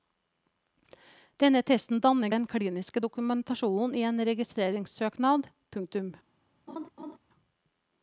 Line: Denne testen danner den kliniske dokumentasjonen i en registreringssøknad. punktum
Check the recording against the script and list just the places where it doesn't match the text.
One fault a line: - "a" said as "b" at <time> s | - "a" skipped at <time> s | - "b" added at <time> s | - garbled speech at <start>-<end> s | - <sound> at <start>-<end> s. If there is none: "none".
- laugh at 6.7-7.2 s